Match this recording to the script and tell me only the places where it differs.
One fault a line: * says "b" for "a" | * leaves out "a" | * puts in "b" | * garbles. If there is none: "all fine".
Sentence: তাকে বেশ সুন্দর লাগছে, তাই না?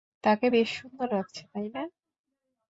all fine